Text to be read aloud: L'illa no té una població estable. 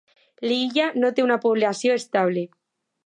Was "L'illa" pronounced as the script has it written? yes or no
yes